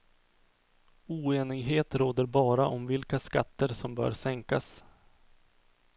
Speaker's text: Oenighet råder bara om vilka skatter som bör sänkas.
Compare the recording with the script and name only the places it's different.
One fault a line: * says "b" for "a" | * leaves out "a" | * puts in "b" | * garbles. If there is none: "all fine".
all fine